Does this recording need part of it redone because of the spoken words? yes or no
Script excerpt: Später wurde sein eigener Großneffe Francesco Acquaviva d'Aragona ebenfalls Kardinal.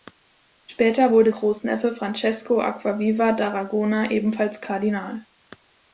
yes